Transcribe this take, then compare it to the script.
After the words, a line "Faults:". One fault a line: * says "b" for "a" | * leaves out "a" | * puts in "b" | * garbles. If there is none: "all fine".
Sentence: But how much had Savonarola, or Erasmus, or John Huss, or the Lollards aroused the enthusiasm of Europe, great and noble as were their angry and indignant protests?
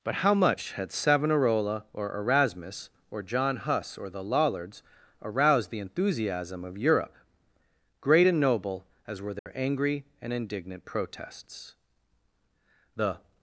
But how much had Savonarola, or Erasmus, or John Huss, or the Lollards aroused the enthusiasm of Europe, great and noble as were their angry and indignant protests? The
Faults:
* puts in "The"